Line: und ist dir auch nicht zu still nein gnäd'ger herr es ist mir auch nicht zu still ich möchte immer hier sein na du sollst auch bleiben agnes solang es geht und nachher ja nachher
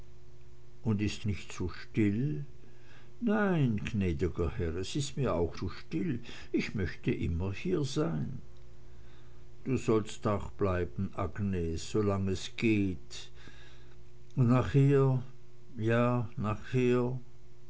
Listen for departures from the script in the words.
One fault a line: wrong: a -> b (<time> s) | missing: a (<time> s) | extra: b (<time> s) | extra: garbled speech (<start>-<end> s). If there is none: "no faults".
missing: dir auch (1.2 s)
missing: nicht (5.6 s)
missing: na (8.4 s)